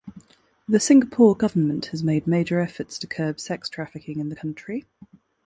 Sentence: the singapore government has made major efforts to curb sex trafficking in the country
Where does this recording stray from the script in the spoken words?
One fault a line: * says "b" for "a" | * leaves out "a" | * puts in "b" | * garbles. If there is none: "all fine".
all fine